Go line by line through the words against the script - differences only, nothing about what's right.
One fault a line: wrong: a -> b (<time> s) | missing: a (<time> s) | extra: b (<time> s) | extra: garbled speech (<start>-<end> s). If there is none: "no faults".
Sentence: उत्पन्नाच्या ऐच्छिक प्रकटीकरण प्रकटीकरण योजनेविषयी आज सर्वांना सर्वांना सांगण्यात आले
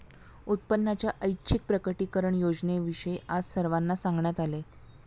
missing: प्रकटीकरण (2.4 s)
missing: सर्वांना (4.0 s)